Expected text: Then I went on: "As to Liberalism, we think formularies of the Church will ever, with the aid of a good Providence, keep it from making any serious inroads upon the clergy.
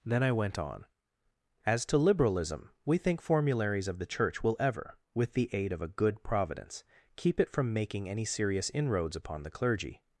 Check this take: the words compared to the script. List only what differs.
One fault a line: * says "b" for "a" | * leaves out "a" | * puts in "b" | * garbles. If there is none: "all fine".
all fine